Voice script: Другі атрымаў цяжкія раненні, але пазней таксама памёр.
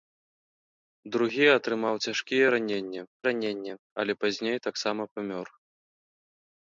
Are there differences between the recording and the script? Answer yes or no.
yes